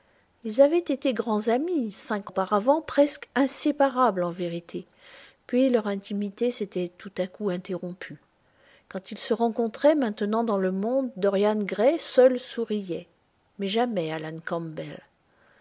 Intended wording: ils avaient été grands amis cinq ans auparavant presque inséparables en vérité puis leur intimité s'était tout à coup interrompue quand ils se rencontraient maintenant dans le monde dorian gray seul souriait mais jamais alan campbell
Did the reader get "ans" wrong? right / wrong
wrong